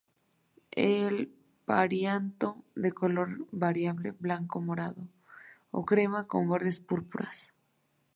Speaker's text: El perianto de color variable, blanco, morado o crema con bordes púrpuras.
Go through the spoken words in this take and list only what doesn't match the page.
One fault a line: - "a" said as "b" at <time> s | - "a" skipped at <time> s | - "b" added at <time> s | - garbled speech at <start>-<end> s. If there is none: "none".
none